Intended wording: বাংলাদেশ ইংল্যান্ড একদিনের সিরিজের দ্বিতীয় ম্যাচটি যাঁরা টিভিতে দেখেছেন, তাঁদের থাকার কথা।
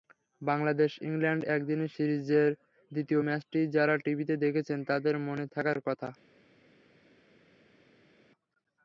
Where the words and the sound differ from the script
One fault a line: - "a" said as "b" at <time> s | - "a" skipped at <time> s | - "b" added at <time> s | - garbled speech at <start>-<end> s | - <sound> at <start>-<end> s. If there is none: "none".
- "মনে" added at 5.3 s